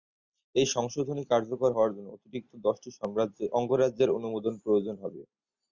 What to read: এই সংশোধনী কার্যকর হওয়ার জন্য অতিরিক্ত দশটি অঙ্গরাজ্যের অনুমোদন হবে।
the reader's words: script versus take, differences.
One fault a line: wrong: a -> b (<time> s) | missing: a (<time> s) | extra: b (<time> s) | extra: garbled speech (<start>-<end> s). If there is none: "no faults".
extra: প্রয়োজন (4.6 s)